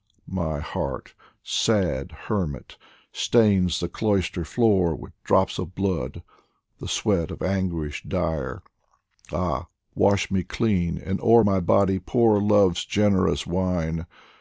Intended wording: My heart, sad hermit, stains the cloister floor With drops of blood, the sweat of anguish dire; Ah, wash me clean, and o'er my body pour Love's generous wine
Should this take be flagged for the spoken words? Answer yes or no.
no